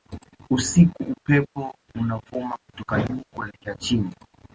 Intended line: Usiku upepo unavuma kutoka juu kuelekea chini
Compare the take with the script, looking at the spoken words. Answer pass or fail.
pass